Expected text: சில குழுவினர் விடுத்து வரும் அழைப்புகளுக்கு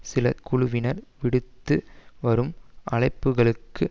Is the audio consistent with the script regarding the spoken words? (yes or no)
yes